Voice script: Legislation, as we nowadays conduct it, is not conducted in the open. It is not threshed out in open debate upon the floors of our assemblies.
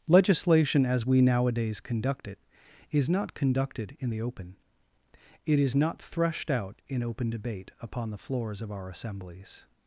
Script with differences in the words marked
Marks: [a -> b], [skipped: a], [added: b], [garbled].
Legislation, as we nowadays conduct it, is not conducted in the open. It is not threshed out in open debate upon the floors of our assemblies.